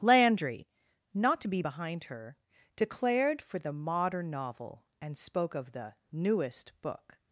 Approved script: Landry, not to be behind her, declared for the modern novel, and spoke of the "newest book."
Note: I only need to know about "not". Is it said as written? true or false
true